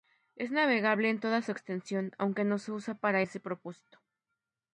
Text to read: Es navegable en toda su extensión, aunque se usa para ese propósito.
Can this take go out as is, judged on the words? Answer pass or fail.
fail